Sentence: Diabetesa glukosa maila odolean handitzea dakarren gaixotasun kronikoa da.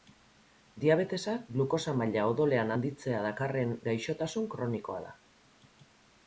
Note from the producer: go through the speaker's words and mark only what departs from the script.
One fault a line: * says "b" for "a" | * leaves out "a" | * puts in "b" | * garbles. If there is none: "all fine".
all fine